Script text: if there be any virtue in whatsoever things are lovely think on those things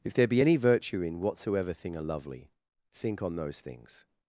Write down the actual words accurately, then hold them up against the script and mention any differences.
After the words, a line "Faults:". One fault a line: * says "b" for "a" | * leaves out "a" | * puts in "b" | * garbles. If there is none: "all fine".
if there be any virtue in whatsoever thing are lovely think on those things
Faults:
* says "thing" for "things"